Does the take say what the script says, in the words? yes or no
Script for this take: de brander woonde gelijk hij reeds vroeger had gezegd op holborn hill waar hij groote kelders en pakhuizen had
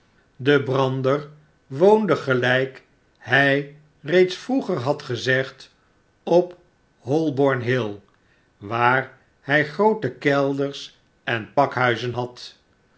yes